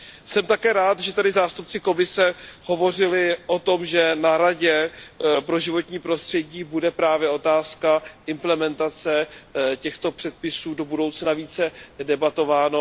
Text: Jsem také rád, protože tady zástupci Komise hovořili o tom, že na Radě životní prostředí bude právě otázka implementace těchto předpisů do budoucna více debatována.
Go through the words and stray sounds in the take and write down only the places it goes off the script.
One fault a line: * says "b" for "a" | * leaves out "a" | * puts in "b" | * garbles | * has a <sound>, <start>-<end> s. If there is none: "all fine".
* says "že" for "protože"
* puts in "pro"